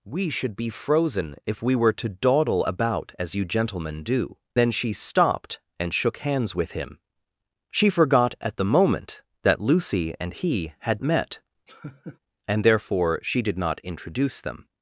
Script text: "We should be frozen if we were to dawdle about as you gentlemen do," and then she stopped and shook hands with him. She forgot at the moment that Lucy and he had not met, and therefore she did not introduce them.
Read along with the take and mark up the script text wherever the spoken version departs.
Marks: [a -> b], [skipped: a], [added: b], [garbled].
"We should be frozen if we were to dawdle about as you gentlemen do," [skipped: and] then she stopped and shook hands with him. She forgot at the moment that Lucy and he had [skipped: not] met, and therefore she did not introduce them.